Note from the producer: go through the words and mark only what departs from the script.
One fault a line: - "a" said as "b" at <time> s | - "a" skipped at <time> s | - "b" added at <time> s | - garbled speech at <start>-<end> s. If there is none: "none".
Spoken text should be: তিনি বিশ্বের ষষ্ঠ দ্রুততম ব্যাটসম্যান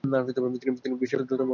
- "ষষ্ঠ" skipped at 1.2 s